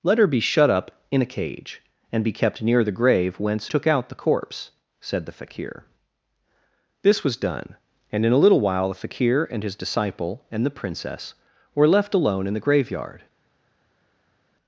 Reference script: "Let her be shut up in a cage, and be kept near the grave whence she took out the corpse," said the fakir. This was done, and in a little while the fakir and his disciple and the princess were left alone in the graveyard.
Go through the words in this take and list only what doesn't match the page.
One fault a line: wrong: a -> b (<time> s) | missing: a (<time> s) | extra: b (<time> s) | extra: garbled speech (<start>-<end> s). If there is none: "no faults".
missing: she (3.7 s)